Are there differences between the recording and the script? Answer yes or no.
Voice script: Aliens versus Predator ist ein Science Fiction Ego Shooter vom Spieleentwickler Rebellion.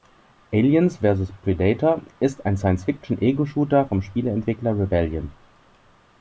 no